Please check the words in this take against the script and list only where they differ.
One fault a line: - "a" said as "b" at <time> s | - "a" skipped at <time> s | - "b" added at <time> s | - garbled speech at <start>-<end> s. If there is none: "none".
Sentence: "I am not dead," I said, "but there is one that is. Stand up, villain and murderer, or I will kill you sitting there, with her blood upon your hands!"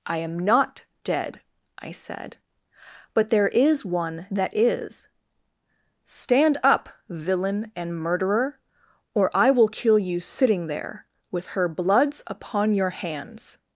- "blood" said as "bloods" at 11.7 s